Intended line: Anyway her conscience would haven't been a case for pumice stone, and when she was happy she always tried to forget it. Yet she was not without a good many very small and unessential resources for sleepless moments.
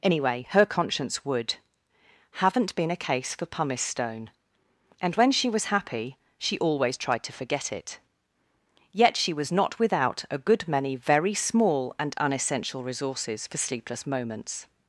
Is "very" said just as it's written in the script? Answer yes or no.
yes